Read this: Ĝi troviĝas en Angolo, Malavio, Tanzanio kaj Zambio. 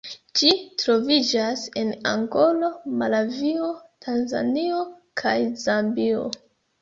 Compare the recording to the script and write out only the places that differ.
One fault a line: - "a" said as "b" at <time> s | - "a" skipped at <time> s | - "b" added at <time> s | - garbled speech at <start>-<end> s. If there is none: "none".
none